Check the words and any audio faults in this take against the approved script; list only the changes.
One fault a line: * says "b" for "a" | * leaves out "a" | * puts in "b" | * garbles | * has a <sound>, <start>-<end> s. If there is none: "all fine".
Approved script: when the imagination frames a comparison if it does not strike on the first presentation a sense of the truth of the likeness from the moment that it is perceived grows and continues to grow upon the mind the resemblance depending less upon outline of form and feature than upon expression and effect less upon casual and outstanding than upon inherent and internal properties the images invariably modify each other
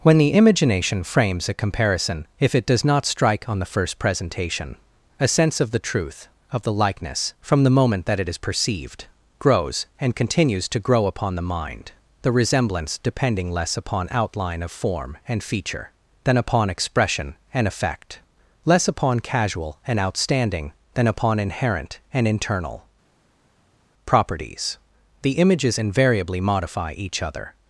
all fine